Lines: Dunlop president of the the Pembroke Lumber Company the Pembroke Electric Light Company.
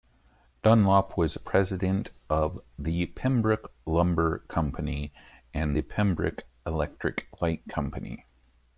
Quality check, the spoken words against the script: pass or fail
fail